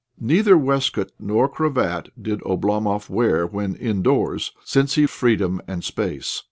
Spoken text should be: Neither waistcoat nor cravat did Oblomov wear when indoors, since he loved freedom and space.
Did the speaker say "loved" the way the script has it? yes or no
no